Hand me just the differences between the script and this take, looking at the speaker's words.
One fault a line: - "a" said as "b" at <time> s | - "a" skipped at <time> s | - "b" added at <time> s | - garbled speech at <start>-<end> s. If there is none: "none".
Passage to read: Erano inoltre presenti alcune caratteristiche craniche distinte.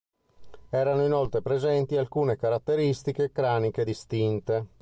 none